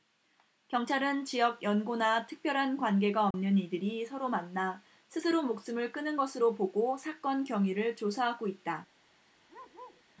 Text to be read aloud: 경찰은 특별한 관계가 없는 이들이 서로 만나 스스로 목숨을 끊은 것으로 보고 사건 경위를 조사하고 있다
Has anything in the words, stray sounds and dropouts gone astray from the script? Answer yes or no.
yes